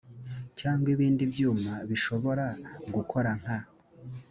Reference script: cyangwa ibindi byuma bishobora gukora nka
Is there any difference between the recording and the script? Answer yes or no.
no